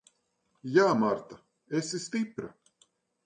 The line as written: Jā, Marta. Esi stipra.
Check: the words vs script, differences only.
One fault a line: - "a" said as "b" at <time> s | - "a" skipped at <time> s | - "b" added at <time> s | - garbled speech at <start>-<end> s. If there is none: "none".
none